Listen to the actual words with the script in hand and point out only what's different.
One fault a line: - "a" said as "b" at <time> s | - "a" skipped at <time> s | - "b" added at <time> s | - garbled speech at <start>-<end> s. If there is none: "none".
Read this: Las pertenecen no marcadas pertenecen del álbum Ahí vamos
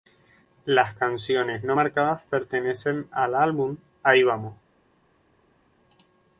- "pertenecen" said as "canciones" at 0.9 s
- "del" said as "al" at 3.1 s